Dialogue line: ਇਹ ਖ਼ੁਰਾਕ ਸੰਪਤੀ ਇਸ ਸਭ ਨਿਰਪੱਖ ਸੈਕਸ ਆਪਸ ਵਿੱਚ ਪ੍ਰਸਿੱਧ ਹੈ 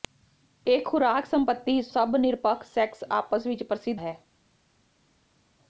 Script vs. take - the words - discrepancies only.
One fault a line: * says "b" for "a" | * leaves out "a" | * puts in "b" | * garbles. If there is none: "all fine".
all fine